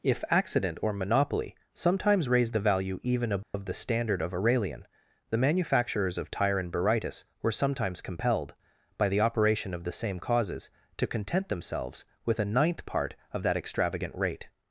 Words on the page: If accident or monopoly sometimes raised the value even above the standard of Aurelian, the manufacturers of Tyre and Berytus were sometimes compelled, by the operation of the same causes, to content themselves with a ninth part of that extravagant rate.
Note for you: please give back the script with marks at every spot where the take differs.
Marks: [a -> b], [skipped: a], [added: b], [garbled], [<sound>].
If accident or monopoly sometimes raised the value even above [dropout] the standard of Aurelian, the manufacturers of Tyre and Berytus were sometimes compelled, by the operation of the same causes, to content themselves with a ninth part of that extravagant rate.